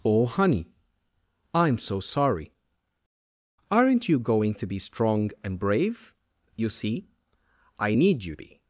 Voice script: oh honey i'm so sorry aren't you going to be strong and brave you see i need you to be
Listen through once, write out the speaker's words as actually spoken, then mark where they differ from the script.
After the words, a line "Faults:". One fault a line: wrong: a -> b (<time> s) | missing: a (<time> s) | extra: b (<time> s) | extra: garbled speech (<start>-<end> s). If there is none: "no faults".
oh honey i'm so sorry aren't you going to be strong and brave you see i need you be
Faults:
missing: to (8.3 s)